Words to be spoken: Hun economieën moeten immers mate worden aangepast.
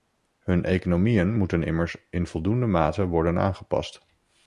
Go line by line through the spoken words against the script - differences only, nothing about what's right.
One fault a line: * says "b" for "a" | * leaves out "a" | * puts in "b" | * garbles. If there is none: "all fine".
* puts in "in voldoende"